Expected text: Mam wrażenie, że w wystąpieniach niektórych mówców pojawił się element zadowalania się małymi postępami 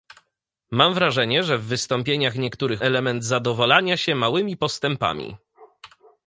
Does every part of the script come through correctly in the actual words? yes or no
no